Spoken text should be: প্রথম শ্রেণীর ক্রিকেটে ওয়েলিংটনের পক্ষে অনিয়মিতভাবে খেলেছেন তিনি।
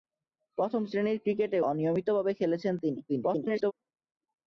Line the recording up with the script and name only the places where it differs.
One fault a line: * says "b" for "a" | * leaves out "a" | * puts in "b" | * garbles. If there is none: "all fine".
* leaves out "ওয়েলিংটনের পক্ষে"
* garbles